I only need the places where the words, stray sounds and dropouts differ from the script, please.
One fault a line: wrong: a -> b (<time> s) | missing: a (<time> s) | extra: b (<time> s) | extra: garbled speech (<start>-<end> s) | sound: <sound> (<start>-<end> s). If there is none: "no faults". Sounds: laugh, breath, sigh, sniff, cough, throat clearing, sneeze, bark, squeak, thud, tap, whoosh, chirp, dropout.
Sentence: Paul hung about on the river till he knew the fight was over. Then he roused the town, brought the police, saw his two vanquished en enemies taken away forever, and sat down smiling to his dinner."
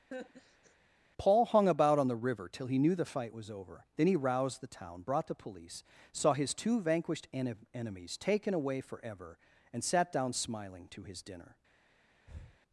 sound: laugh (0.1-0.8 s)
sound: breath (12.3-12.6 s)